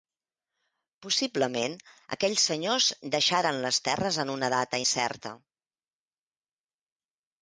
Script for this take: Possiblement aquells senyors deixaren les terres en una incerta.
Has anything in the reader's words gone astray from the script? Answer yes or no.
yes